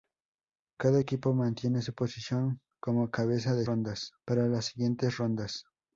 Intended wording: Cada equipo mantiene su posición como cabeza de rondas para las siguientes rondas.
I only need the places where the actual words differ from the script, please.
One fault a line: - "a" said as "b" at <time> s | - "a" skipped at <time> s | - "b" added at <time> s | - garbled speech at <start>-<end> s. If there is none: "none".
none